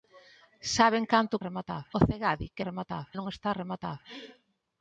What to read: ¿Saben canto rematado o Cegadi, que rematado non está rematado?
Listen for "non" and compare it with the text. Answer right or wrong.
right